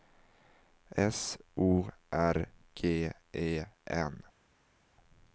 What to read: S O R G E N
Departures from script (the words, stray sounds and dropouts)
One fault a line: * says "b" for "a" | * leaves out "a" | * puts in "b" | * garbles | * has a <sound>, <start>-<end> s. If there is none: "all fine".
all fine